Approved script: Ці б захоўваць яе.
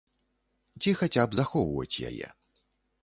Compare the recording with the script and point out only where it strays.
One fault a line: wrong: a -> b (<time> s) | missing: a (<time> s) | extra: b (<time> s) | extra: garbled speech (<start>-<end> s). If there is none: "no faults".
extra: хаця (1.0 s)